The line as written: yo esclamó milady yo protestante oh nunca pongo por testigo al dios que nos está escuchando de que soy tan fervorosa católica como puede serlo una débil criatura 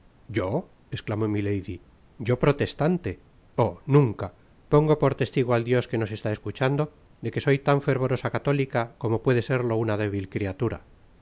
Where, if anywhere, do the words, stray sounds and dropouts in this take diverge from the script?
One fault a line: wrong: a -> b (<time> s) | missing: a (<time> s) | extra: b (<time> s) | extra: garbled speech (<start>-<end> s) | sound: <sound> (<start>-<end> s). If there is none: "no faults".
no faults